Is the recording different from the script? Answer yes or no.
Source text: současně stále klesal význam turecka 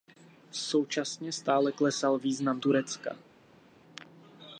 no